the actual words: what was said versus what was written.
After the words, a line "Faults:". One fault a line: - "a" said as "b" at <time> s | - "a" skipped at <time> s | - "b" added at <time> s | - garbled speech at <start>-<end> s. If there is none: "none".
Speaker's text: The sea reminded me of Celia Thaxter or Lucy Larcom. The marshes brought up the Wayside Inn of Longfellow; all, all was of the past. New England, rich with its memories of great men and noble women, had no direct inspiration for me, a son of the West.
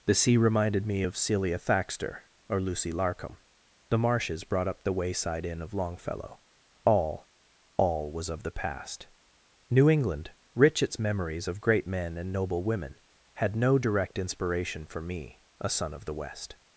The sea reminded me of Celia Thaxter or Lucy Larcom. The marshes brought up the Wayside Inn of Longfellow; all, all was of the past. New England, rich its memories of great men and noble women, had no direct inspiration for me, a son of the West.
Faults:
- "with" skipped at 10.8 s